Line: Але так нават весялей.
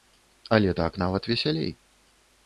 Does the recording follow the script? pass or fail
pass